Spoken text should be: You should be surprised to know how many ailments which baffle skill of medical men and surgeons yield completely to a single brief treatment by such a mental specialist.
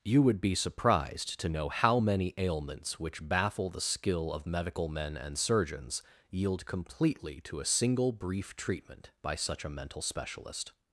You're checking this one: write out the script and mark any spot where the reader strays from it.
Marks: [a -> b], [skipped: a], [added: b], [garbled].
You [should -> would] be surprised to know how many ailments which baffle [added: the] skill of medical men and surgeons yield completely to a single brief treatment by such a mental specialist.